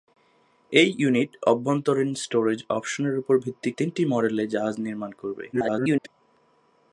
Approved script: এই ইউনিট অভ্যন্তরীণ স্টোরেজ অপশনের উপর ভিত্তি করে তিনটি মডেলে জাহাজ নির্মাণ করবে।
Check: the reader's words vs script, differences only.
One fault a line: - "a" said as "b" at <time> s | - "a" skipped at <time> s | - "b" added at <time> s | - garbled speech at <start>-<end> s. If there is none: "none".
- "করে" skipped at 3.7 s
- garbled speech at 5.5-6.1 s